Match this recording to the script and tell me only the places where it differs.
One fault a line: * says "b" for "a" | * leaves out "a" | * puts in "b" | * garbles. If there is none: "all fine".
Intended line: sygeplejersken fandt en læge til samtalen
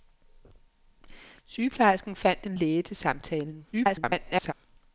* garbles